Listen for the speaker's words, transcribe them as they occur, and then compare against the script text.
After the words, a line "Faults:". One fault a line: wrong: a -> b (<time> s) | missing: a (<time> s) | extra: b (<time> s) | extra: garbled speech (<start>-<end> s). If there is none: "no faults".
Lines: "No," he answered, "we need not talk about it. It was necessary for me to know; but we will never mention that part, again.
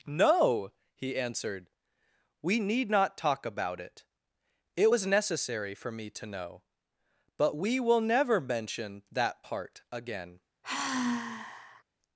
"No," he answered, "we need not talk about it. It was necessary for me to know; but we will never mention that part, again.
Faults:
no faults